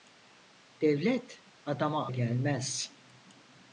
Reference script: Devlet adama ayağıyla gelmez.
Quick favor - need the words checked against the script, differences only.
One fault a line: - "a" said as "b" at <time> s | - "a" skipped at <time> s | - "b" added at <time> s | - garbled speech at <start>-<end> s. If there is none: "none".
- "ayağıyla" skipped at 2.1 s